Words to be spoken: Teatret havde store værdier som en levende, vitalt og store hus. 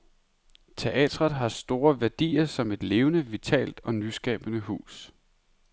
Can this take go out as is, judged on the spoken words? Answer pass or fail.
fail